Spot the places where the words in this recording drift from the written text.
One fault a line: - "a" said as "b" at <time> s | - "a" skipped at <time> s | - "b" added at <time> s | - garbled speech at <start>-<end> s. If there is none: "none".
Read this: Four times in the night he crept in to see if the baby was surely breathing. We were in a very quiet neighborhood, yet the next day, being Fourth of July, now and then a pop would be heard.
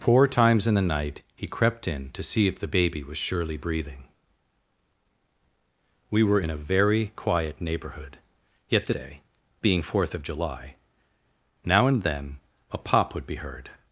- "next" skipped at 8.9 s